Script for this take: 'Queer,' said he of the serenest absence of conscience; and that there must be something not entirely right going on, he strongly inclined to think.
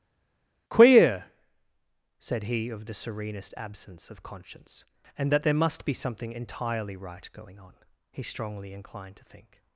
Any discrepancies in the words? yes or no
yes